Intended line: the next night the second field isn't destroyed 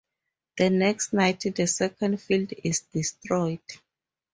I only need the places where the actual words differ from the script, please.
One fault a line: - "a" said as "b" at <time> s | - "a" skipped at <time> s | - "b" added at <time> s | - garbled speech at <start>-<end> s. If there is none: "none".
- "isn't" said as "is" at 2.6 s